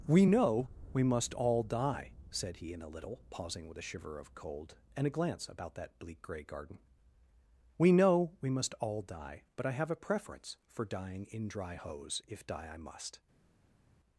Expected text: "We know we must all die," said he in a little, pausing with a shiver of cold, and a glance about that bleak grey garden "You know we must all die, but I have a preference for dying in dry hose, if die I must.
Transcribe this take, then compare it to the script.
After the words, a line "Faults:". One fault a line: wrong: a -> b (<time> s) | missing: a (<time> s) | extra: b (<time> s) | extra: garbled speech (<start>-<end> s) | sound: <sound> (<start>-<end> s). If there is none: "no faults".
"We know we must all die," said he in a little, pausing with a shiver of cold, and a glance about that bleak grey garden "We know we must all die, but I have a preference for dying in dry hose, if die I must.
Faults:
wrong: You -> We (7.8 s)